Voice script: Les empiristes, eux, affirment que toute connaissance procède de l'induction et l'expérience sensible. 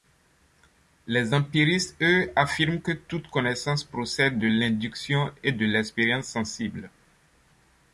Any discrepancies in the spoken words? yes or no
yes